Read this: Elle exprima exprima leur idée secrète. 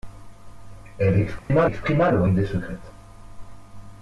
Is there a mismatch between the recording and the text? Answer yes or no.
no